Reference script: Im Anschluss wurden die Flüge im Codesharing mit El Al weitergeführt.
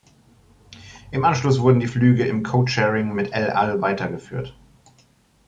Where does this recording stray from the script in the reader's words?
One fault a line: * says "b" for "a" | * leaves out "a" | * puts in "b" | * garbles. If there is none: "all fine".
all fine